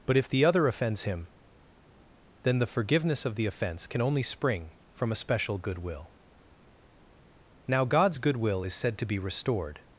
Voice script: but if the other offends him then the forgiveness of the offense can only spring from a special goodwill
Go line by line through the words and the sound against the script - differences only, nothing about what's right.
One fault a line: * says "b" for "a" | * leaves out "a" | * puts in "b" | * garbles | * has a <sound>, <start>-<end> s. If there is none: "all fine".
* puts in "now god's goodwill is said to be restored"